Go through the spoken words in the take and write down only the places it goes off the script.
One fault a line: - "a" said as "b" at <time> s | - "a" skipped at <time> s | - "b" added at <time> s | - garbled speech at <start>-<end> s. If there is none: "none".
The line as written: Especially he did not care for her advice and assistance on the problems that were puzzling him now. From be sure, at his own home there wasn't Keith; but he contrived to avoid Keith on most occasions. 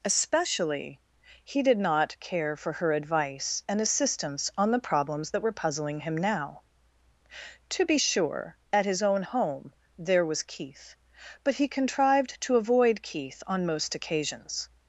- "From" said as "To" at 7.7 s
- "wasn't" said as "was" at 10.2 s